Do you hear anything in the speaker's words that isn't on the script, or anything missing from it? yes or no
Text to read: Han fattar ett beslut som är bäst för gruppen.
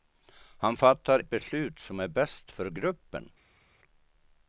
no